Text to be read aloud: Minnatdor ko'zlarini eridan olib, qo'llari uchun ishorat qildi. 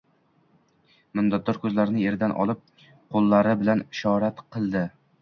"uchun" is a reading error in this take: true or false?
true